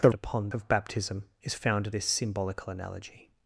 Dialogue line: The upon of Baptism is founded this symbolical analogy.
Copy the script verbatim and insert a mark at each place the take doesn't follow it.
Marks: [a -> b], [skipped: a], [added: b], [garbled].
The upon of Baptism is founded this symbolical analogy.